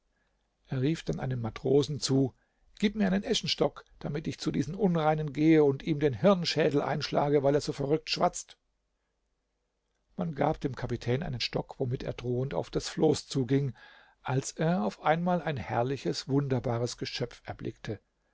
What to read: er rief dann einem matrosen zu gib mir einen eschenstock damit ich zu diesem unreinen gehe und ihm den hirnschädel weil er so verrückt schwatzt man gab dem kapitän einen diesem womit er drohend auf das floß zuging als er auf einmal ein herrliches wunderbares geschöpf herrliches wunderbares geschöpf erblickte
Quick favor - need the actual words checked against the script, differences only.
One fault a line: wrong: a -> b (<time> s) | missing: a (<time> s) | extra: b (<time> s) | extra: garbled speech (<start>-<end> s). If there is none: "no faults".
extra: einschlage (6.8 s)
wrong: diesem -> stock (11.4 s)
missing: herrliches wunderbares geschöpf (17.4 s)